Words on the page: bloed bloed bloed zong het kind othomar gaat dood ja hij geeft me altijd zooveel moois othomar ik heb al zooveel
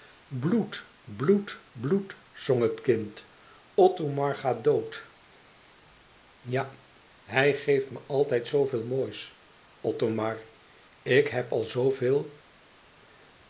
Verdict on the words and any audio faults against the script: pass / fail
pass